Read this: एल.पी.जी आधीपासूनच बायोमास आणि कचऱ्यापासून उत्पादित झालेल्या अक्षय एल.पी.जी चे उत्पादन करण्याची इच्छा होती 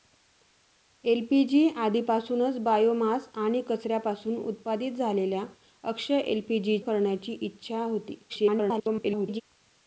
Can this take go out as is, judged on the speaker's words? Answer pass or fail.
fail